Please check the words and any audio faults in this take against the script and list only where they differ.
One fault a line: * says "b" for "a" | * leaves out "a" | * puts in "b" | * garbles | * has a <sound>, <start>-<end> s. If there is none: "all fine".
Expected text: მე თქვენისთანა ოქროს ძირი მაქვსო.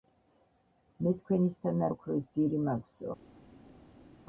all fine